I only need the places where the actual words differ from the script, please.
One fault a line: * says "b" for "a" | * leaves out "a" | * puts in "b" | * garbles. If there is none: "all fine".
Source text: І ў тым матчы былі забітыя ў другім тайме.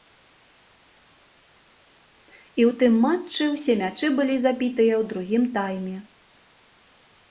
* puts in "ўсе мячы"